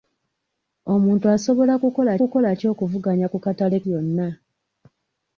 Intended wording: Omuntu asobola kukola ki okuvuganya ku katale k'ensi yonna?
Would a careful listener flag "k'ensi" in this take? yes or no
yes